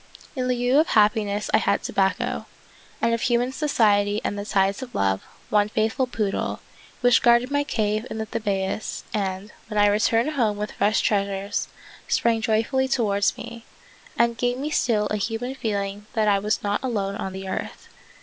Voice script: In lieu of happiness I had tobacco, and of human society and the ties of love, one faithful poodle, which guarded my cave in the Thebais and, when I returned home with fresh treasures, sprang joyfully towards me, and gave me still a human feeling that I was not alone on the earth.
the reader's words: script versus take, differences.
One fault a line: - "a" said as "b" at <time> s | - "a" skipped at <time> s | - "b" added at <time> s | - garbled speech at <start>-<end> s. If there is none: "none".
none